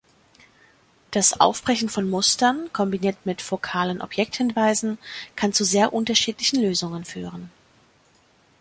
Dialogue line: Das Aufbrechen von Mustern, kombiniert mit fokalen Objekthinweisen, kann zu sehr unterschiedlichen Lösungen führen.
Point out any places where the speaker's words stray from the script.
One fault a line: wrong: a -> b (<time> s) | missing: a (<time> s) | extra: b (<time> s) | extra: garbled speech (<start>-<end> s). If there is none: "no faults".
no faults